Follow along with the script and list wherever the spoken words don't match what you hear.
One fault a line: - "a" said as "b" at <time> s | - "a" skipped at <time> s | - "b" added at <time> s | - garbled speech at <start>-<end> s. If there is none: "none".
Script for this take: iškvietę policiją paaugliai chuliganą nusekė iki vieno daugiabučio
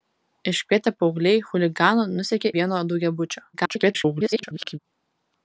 - "policiją" skipped at 0.9 s
- "iki" skipped at 2.5 s
- garbled speech at 3.5-4.8 s